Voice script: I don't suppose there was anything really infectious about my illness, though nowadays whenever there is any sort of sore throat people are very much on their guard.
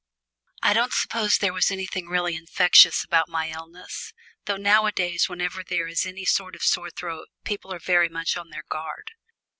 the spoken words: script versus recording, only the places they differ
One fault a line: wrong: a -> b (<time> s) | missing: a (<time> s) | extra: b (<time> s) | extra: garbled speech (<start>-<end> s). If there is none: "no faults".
no faults